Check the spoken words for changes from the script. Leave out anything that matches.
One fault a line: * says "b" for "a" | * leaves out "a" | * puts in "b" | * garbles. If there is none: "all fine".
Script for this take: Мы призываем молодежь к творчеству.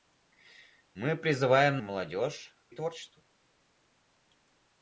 all fine